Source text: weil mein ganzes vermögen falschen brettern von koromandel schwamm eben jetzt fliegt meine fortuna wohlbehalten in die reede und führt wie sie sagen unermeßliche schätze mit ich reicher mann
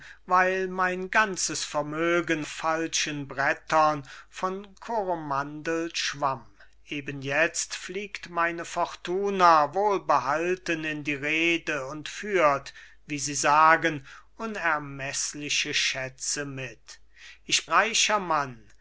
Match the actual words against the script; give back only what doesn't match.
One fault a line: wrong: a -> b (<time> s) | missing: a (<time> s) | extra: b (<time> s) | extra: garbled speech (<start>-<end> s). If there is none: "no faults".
no faults